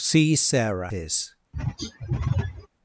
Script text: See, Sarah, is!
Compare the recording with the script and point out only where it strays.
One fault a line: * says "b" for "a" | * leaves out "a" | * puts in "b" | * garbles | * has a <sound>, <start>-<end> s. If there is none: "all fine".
* has a throat clearing, 1.5-2.7 s